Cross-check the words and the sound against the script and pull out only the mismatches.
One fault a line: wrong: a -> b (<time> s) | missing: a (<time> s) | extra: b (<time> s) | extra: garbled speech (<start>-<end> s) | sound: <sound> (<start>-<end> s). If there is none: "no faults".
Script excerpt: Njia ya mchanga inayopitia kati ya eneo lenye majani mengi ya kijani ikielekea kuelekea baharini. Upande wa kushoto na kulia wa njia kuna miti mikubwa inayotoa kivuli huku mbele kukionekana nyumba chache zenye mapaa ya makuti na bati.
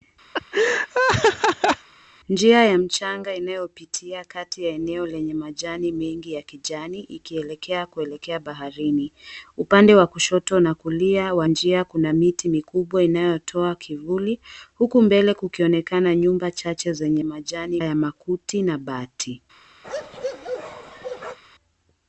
sound: laugh (0.3-1.9 s)
wrong: mapaa -> majani (17.2 s)
sound: bark (19.8-21.4 s)